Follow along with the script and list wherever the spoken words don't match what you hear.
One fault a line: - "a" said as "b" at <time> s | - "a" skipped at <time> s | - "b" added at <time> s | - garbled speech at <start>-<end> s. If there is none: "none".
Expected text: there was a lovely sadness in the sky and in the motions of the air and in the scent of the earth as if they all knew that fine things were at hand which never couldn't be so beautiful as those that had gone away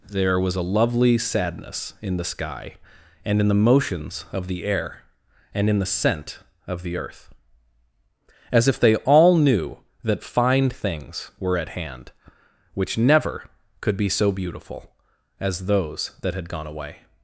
- "couldn't" said as "could" at 13.8 s